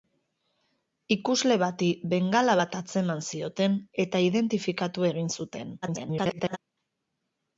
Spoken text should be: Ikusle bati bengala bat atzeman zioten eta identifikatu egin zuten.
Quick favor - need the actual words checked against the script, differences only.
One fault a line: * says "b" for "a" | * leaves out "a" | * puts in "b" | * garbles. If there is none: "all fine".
* garbles